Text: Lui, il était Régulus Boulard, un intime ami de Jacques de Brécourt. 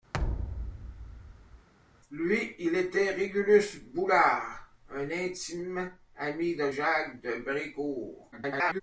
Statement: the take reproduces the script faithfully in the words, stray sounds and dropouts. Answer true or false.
false